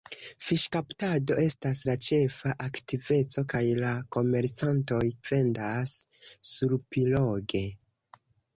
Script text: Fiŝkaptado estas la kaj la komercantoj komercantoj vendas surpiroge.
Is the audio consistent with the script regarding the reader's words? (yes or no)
no